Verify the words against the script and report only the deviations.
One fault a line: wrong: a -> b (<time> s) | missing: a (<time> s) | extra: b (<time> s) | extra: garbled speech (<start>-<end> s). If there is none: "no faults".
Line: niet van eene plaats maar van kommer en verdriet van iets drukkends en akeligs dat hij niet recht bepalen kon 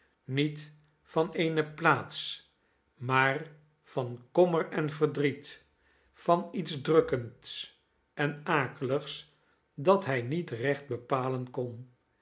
no faults